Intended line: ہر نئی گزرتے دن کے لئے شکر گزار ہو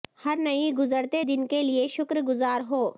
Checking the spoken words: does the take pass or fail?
pass